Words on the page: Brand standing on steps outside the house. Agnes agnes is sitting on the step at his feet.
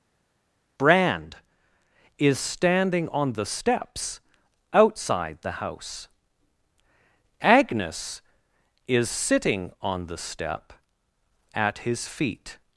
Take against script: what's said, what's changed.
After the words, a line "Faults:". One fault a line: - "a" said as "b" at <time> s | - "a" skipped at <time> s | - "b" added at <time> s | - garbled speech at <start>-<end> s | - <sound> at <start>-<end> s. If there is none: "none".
Brand is standing on the steps outside the house. Agnes is sitting on the step at his feet.
Faults:
- "is" added at 2.2 s
- "the" added at 3.3 s
- "agnes" skipped at 8.2 s